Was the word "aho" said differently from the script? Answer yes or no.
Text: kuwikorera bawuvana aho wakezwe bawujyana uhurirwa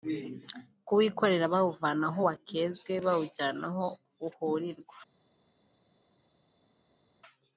no